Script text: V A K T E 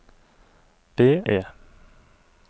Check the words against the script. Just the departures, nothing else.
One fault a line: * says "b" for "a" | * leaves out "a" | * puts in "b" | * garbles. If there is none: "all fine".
* leaves out "A K T"